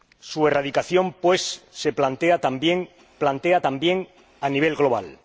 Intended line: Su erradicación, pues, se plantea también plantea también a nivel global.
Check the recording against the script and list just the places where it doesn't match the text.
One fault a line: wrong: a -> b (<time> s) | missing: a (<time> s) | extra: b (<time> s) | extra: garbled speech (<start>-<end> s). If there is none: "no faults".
no faults